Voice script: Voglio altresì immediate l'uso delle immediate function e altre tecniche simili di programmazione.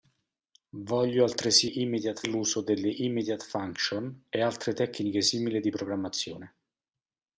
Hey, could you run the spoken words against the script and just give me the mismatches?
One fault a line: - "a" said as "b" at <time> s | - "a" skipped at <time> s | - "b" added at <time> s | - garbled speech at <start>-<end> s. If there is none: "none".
none